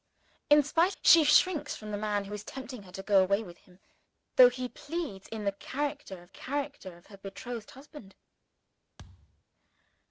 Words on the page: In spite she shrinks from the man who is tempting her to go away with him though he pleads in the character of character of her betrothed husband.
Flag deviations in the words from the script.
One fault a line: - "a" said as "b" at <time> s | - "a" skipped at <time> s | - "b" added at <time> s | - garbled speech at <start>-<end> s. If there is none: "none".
none